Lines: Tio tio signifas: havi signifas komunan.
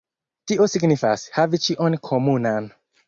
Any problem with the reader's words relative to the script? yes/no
yes